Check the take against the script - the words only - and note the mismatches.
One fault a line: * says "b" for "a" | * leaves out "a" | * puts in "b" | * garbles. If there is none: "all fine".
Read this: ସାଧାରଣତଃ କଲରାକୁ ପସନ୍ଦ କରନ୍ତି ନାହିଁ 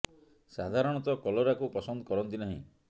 all fine